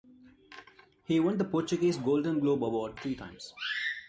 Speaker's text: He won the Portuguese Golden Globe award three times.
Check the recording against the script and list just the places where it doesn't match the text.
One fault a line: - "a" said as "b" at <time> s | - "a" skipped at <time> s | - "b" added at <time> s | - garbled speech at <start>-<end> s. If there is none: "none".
none